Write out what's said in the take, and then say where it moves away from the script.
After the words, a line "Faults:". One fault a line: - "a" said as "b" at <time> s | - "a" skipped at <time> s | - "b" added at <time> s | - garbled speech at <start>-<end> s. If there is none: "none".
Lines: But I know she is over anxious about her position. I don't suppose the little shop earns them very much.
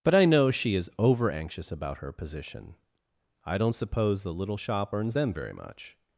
But I know she is over anxious about her position. I don't suppose the little shop earns them very much.
Faults:
none